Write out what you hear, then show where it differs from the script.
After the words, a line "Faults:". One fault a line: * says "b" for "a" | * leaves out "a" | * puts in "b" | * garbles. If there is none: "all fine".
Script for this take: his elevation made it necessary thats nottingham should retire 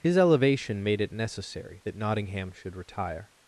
his elevation made it necessary that nottingham should retire
Faults:
* says "that" for "thats"